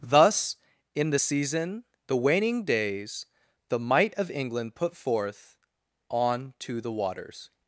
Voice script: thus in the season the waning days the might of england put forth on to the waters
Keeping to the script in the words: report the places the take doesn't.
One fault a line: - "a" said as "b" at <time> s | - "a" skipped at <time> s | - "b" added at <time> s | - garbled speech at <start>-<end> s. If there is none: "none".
none